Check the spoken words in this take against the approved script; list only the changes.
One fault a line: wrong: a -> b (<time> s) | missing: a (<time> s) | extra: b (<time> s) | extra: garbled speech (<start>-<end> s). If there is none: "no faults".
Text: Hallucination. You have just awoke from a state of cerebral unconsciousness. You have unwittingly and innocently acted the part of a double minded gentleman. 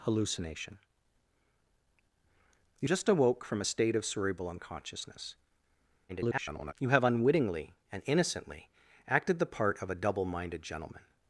missing: have (2.9 s)
extra: garbled speech (6.1-6.7 s)